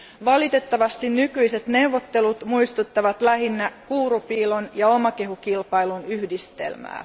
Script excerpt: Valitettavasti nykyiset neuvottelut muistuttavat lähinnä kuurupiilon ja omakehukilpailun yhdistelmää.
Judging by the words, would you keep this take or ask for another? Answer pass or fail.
pass